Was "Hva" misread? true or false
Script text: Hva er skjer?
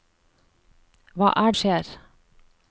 false